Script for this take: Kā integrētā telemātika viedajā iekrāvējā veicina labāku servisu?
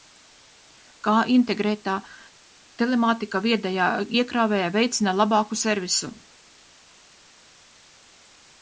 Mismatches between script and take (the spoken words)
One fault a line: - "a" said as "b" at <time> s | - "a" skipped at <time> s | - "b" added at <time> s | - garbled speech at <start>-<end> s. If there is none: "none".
none